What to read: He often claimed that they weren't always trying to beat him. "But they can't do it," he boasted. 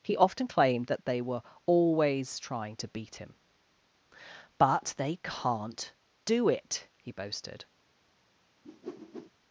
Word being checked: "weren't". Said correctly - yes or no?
no